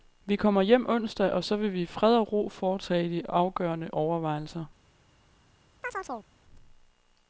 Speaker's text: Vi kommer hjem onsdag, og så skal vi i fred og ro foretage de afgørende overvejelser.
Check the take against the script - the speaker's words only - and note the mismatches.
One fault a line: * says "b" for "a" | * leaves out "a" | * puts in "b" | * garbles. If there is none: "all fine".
* says "vil" for "skal"